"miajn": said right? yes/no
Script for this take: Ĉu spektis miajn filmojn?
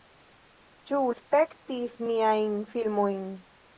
yes